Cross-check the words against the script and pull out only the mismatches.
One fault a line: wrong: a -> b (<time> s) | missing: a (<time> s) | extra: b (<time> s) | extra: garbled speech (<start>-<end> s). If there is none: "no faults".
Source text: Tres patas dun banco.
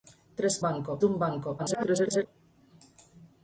wrong: patas -> banco (0.7 s)
extra: garbled speech (1.6-2.3 s)